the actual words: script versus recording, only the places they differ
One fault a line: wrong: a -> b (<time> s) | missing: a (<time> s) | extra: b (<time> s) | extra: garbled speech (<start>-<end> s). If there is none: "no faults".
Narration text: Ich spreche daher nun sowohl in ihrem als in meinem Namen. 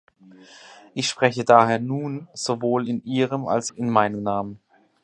no faults